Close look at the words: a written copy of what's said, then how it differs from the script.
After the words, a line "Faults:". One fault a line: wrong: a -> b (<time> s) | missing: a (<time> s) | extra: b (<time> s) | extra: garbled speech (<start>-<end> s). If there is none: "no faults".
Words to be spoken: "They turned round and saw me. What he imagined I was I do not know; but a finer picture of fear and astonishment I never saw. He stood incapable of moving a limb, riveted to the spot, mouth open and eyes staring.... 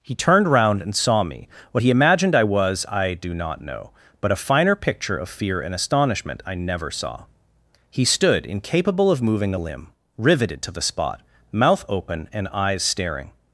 "He turned round and saw me. What he imagined I was I do not know; but a finer picture of fear and astonishment I never saw. He stood incapable of moving a limb, riveted to the spot, mouth open and eyes staring....
Faults:
wrong: They -> He (0.0 s)